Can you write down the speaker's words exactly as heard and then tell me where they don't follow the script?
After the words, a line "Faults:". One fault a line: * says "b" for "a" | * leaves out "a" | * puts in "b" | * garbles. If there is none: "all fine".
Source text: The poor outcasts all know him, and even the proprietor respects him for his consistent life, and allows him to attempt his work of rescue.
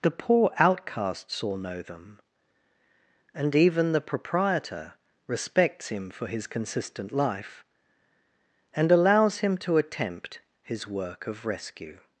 The poor outcasts all know them, and even the proprietor respects him for his consistent life, and allows him to attempt his work of rescue.
Faults:
* says "them" for "him"